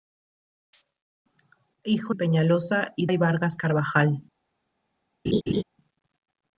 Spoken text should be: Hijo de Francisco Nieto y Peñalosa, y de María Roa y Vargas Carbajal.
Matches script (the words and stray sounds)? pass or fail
fail